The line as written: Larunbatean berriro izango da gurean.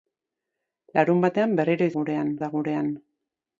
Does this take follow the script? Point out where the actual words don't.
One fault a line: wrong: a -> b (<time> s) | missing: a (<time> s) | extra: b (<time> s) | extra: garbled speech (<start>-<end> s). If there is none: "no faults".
wrong: izango -> gurean (2.0 s)